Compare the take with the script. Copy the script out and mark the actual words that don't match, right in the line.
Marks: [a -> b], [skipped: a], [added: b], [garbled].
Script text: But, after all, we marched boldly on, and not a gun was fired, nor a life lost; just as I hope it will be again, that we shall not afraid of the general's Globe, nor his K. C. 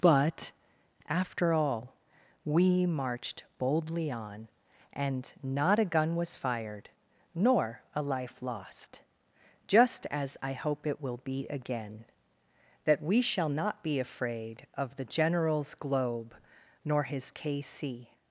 But, after all, we marched boldly on, and not a gun was fired, nor a life lost; just as I hope it will be again, that we shall not [added: be] afraid of the general's Globe, nor his K. C.